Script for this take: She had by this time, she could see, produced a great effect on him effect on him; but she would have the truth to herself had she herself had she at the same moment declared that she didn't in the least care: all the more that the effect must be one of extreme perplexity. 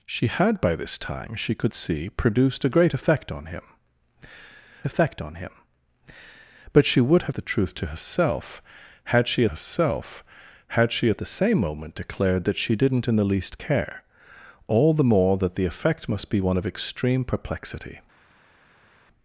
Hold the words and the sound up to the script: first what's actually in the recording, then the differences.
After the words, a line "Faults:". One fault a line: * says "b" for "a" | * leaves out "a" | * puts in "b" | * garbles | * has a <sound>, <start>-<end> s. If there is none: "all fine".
She had by this time, she could see, produced a great effect on him effect on him; but she would have the truth to herself had she herself had she at the same moment declared that she didn't in the least care: all the more that the effect must be one of extreme perplexity.
Faults:
all fine